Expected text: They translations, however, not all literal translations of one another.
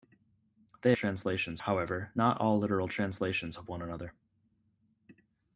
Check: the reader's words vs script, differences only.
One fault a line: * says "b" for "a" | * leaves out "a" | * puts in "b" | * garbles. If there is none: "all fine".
all fine